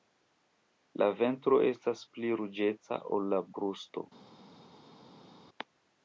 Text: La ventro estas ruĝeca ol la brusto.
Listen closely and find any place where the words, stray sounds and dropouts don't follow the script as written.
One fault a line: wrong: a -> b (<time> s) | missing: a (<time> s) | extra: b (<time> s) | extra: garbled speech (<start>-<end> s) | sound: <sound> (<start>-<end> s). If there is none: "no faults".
extra: pli (2.2 s)